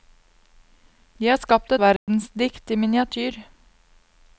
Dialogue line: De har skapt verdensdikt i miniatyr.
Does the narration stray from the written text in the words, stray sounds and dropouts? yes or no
yes